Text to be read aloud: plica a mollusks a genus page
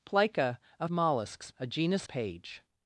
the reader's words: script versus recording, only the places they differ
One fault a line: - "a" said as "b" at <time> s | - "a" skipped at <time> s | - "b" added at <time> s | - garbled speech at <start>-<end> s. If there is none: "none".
none